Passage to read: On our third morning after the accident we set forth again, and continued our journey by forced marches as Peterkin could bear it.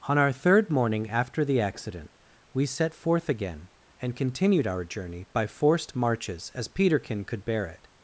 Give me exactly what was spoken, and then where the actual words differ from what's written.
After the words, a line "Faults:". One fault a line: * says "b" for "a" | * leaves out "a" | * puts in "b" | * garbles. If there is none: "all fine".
On our third morning after the accident we set forth again, and continued our journey by forced marches as Peterkin could bear it.
Faults:
all fine